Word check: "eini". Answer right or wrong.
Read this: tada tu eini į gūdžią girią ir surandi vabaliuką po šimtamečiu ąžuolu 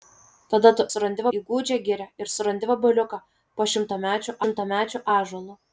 wrong